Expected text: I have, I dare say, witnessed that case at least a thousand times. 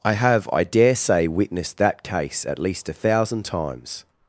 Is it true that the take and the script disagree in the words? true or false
false